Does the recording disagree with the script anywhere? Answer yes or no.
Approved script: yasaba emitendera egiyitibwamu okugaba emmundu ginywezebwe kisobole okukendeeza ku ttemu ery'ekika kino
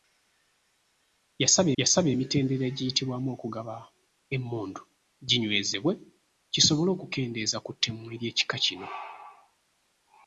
yes